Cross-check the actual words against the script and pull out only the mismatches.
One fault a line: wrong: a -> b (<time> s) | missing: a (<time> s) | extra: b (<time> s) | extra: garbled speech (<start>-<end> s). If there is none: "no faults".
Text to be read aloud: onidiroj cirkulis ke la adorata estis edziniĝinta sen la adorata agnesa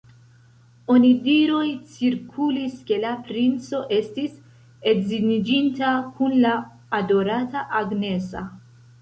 wrong: adorata -> princo (3.3 s)
wrong: sen -> kun (6.2 s)